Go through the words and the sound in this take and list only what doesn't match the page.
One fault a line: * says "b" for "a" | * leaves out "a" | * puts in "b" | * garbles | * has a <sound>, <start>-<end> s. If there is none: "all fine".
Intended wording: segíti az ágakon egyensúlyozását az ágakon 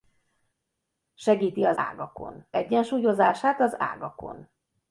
all fine